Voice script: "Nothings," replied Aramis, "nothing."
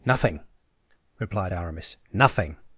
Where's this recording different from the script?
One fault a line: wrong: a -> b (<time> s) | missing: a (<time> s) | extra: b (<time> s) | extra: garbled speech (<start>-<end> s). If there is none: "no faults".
wrong: Nothings -> Nothing (0.1 s)